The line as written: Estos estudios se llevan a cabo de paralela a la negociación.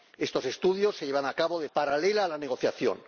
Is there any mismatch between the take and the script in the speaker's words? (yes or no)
no